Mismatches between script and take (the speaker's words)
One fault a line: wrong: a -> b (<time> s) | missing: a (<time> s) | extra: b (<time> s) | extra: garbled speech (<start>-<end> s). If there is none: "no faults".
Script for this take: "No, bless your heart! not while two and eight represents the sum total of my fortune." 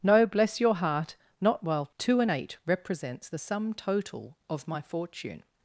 no faults